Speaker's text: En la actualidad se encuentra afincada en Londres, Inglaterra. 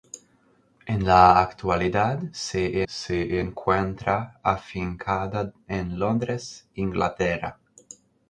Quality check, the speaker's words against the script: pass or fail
fail